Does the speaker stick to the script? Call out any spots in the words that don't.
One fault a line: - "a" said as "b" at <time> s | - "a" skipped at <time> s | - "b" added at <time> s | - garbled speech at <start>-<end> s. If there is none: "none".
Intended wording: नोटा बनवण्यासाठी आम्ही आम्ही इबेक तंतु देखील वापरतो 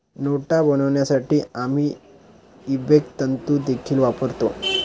- "आम्ही" skipped at 1.9 s